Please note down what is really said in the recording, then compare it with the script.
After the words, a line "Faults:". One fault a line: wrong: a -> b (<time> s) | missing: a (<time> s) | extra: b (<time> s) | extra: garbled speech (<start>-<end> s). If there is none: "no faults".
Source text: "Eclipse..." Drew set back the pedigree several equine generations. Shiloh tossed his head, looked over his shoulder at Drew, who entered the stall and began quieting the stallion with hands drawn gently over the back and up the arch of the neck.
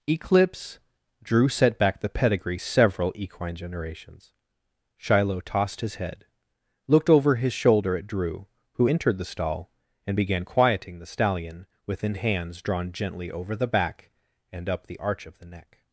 "Eclipse..." Drew set back the pedigree several equine generations. Shiloh tossed his head, looked over his shoulder at Drew, who entered the stall and began quieting the stallion within hands drawn gently over the back and up the arch of the neck.
Faults:
wrong: with -> within (11.9 s)